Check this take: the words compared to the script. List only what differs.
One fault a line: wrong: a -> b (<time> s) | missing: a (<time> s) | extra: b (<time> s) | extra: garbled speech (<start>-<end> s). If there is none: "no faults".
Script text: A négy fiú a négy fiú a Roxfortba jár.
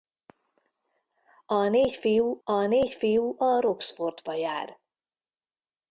no faults